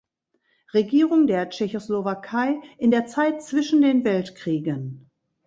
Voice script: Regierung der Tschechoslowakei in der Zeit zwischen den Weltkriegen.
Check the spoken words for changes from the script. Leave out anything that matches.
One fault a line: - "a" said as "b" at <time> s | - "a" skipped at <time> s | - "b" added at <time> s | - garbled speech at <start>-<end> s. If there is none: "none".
none